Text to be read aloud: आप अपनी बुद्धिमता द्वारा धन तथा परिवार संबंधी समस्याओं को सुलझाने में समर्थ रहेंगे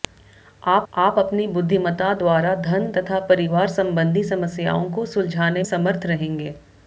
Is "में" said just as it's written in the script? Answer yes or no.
no